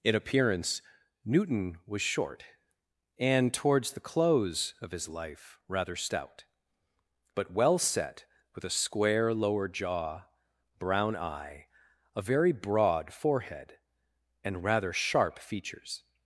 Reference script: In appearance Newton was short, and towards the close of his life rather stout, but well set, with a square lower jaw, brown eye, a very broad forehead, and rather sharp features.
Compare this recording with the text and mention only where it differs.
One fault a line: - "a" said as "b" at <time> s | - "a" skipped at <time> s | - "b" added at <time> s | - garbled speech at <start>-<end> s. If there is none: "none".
none